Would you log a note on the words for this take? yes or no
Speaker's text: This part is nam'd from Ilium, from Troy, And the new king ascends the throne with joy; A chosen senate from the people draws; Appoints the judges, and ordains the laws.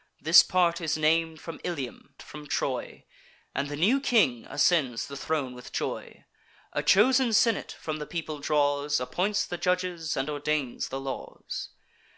no